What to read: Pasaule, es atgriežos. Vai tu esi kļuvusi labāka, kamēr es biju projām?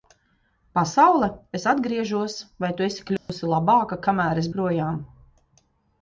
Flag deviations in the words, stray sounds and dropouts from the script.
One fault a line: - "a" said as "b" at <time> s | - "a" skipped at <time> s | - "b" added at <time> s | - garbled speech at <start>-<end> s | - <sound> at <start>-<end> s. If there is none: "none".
- dropout at 3.2-3.3 s
- "biju" skipped at 4.5 s